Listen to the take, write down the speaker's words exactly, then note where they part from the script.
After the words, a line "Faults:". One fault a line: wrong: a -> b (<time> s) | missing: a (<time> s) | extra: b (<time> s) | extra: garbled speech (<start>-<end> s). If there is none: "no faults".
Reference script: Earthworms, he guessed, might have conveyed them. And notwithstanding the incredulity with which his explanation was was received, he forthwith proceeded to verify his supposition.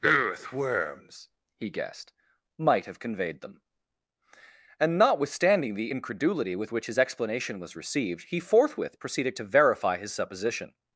Earthworms, he guessed, might have conveyed them. And notwithstanding the incredulity with which his explanation was received, he forthwith proceeded to verify his supposition.
Faults:
missing: was (7.8 s)